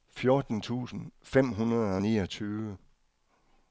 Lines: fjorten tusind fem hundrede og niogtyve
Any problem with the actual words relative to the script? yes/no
no